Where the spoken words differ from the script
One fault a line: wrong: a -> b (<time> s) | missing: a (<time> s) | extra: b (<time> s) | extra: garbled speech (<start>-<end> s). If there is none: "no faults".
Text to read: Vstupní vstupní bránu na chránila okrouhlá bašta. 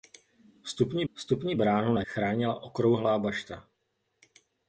no faults